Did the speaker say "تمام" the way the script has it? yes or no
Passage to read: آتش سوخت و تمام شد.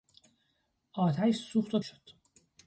no